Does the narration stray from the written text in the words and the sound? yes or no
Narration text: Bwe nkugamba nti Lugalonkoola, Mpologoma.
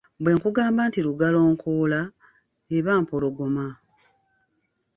yes